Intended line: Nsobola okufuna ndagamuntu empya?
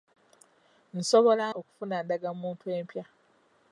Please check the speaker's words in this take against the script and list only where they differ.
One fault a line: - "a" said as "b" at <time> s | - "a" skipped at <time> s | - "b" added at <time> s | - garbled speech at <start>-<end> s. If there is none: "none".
none